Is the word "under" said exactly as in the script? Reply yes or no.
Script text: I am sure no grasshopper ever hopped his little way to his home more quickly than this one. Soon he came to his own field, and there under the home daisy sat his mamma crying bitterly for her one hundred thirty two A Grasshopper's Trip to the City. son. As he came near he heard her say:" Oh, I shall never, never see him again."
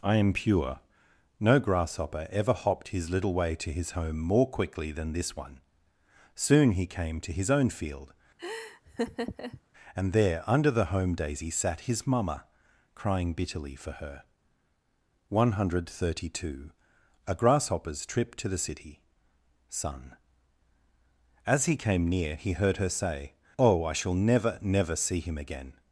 yes